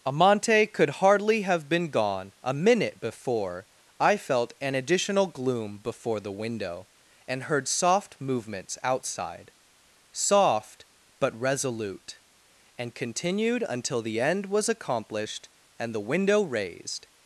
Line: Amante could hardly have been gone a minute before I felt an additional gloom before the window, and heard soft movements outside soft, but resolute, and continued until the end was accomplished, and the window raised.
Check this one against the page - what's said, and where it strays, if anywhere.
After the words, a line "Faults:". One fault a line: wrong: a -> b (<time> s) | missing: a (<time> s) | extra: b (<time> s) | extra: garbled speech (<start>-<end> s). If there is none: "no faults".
Amante could hardly have been gone a minute before I felt an additional gloom before the window, and heard soft movements outside soft, but resolute, and continued until the end was accomplished, and the window raised.
Faults:
no faults